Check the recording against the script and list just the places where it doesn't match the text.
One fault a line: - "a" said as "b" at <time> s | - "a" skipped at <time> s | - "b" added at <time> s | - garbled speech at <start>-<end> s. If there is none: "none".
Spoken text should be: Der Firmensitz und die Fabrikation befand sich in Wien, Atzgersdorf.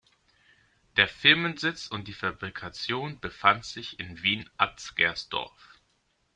none